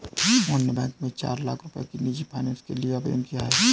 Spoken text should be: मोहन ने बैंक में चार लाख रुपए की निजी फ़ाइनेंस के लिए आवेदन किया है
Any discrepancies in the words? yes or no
no